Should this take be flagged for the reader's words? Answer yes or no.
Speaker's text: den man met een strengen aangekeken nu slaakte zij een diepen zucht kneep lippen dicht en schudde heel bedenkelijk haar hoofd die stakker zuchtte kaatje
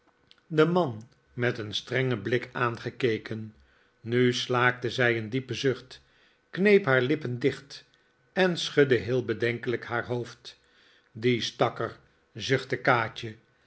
yes